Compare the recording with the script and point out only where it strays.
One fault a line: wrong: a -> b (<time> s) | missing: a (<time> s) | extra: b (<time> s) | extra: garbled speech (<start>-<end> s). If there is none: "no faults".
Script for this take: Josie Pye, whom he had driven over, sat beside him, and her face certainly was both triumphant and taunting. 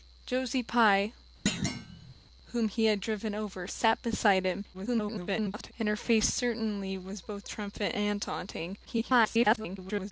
extra: garbled speech (4.7-5.7 s)
extra: garbled speech (8.9-10.1 s)